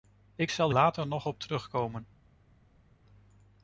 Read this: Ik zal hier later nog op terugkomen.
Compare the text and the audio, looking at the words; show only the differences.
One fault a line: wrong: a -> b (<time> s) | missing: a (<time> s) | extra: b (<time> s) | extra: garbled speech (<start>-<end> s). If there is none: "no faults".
missing: hier (0.7 s)